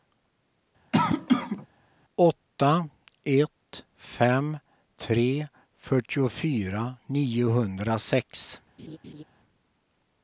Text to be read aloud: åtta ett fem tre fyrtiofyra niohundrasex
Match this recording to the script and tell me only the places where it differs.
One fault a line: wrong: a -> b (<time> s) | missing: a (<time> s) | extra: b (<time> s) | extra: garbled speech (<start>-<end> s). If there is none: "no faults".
no faults